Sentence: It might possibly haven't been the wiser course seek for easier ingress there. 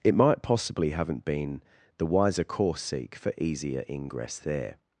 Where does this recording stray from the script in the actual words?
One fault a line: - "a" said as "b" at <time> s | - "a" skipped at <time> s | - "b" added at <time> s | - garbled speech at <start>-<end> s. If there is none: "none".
none